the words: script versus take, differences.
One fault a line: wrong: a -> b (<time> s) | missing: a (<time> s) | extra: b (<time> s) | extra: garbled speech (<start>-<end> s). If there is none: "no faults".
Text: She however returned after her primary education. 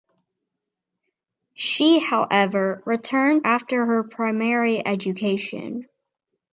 no faults